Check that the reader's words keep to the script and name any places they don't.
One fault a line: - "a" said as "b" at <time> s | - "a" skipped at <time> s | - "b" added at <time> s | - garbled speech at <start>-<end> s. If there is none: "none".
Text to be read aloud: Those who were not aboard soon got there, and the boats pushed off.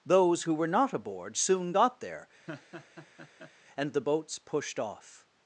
none